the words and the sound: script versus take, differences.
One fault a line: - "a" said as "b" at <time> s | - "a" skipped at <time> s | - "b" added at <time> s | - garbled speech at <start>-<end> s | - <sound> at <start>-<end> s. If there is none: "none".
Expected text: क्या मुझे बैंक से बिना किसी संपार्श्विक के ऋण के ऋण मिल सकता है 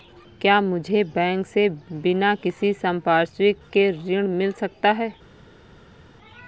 - "के ऋण" skipped at 4.3 s